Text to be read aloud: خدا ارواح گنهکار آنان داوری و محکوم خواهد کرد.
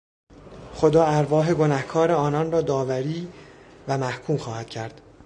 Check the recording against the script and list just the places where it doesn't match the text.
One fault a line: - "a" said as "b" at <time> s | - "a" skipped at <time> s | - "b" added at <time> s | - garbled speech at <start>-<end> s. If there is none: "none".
- "را" added at 2.5 s